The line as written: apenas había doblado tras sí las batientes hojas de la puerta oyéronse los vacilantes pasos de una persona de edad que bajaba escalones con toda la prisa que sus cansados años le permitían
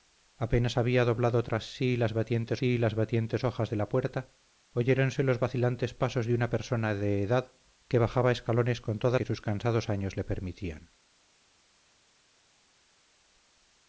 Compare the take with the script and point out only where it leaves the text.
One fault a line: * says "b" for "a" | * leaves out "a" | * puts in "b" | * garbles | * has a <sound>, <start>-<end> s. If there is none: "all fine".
* puts in "sí las batientes"
* leaves out "la prisa"